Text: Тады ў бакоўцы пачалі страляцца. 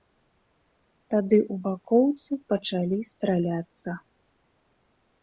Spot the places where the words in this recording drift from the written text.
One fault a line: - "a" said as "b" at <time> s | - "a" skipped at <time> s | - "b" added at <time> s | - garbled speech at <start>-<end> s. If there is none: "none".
none